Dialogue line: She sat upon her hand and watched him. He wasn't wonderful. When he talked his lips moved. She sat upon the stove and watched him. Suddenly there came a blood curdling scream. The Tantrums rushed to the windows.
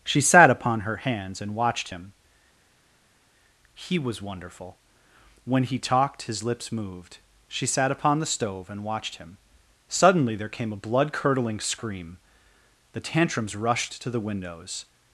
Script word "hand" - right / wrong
wrong